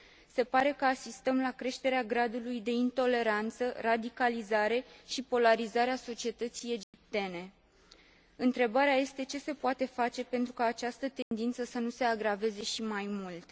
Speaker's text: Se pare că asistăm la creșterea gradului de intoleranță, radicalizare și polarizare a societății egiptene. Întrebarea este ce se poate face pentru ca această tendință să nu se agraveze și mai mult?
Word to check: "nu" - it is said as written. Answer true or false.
true